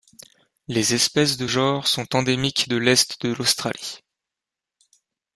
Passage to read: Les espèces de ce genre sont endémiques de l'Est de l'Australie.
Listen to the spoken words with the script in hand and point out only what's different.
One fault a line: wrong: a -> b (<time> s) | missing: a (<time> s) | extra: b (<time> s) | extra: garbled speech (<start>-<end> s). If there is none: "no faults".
missing: ce (1.5 s)